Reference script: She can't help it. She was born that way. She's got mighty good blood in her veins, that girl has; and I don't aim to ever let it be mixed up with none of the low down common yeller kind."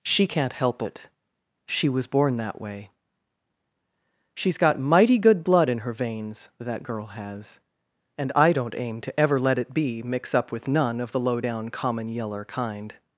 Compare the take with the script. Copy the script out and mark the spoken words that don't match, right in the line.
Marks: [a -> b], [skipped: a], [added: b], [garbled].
She can't help it. She was born that way. She's got mighty good blood in her veins, that girl has; and I don't aim to ever let it be [mixed -> mix] up with none of the low down common yeller kind."